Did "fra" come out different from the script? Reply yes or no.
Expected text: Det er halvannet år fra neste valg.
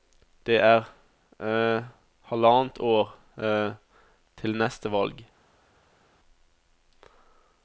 yes